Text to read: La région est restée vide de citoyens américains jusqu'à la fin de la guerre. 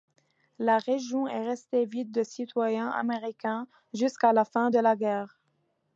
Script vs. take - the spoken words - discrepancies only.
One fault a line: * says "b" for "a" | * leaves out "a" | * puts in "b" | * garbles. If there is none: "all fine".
all fine